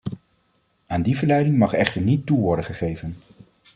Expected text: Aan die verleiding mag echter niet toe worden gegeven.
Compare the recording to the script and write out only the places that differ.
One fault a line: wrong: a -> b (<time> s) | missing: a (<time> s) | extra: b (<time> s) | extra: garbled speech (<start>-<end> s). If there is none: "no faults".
no faults